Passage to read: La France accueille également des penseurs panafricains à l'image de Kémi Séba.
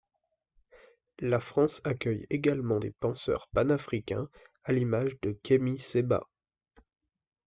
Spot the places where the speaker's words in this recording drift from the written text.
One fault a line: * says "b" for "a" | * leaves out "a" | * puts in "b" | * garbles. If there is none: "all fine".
all fine